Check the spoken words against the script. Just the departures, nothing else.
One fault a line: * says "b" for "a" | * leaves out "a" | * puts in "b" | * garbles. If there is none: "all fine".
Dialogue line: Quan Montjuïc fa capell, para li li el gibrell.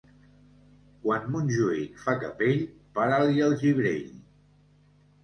* leaves out "li"